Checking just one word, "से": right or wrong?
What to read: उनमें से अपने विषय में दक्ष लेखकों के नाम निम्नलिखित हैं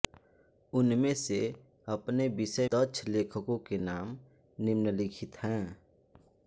right